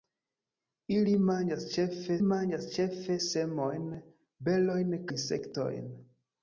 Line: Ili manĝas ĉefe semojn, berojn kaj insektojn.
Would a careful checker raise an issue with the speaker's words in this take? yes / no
yes